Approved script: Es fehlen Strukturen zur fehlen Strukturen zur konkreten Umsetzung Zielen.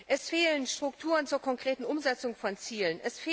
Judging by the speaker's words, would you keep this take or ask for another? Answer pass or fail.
fail